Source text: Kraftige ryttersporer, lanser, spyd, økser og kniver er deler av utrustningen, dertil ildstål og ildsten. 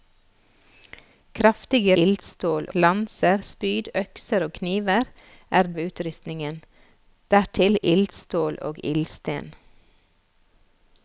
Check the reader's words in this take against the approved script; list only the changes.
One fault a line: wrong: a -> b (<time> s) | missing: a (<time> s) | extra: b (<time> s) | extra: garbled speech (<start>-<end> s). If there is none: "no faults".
wrong: ryttersporer -> ildstål (2.0 s)
missing: deler (5.7 s)